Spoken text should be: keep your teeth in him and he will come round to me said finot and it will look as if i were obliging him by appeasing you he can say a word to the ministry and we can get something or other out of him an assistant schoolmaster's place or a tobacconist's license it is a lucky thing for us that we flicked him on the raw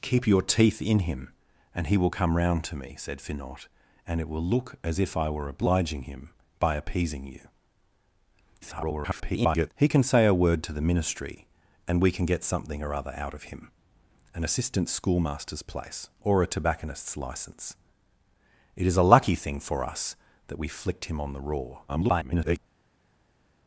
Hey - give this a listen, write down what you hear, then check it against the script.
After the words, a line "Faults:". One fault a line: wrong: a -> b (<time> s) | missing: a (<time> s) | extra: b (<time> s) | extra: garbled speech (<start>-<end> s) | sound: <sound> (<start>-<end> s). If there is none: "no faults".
keep your teeth in him and he will come round to me said finot and it will look as if i were obliging him by appeasing you [garbled] he can say a word to the ministry and we can get something or other out of him an assistant schoolmaster's place or a tobacconist's license it is a lucky thing for us that we flicked him on the raw [garbled]
Faults:
extra: garbled speech (8.6-9.7 s)
extra: garbled speech (21.9-22.6 s)